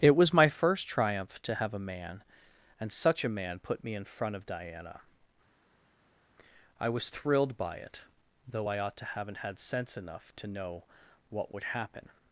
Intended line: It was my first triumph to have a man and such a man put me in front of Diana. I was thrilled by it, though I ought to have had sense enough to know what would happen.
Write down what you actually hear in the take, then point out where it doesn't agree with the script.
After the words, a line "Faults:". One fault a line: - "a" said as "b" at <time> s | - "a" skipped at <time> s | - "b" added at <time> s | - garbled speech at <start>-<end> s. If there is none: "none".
It was my first triumph to have a man and such a man put me in front of Diana. I was thrilled by it, though I ought to haven't had sense enough to know what would happen.
Faults:
- "have" said as "haven't" at 9.0 s